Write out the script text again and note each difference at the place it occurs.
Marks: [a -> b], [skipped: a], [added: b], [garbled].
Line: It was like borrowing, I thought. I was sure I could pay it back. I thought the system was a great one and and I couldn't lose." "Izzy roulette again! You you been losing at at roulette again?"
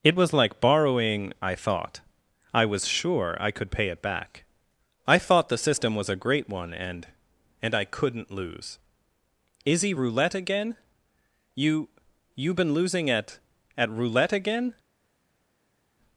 It was like borrowing, I thought. I was sure I could pay it back. I thought the system was a great one and and I couldn't lose." "Izzy roulette again! You you been losing at at roulette again?"